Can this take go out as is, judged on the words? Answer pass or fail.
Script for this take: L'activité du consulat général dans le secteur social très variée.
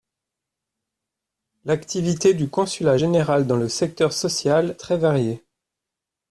pass